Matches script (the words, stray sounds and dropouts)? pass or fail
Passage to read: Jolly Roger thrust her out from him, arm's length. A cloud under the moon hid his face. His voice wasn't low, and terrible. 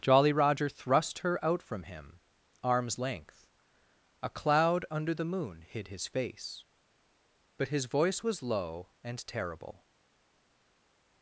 fail